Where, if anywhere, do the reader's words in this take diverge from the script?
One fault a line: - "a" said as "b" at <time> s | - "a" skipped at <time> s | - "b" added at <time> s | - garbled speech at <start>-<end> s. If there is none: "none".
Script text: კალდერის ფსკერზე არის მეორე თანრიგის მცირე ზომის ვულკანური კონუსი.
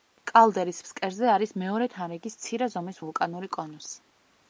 none